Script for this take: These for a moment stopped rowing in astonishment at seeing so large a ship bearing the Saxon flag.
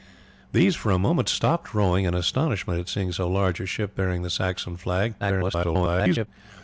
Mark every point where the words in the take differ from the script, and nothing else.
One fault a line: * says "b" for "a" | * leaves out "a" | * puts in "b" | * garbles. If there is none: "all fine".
* garbles